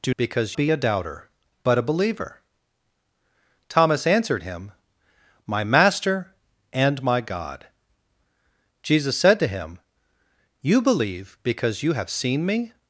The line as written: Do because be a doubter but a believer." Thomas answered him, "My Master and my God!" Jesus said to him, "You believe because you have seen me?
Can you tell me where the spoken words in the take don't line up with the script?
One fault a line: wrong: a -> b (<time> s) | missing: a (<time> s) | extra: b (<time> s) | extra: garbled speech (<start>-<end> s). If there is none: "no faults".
no faults